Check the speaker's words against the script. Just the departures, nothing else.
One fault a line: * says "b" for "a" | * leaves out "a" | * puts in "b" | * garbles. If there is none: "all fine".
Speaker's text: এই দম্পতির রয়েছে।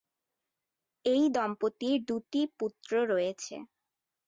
* puts in "দুটি পুত্র"